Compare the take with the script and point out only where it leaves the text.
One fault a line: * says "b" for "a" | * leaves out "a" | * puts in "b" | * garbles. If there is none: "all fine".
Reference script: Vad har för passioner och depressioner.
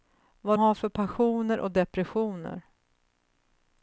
all fine